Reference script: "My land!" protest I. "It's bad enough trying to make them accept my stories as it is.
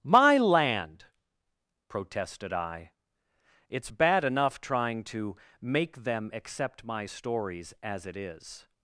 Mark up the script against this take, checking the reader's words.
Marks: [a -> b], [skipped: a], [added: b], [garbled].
"My land!" [protest -> protested] I. "It's bad enough trying to make them accept my stories as it is.